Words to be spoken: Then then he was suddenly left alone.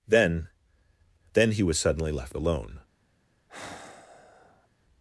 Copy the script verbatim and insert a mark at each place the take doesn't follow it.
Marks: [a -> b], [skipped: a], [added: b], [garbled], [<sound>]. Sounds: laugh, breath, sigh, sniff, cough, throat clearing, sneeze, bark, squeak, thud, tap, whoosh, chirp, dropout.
Then then he was suddenly left alone. [sigh]